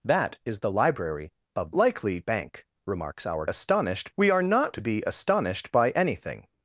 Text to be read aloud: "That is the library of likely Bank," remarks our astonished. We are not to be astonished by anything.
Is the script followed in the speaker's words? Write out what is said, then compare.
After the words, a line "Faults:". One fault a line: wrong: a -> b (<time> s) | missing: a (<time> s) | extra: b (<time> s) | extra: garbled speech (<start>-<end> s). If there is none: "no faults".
"That is the library of likely Bank," remarks our astonished. We are not to be astonished by anything.
Faults:
no faults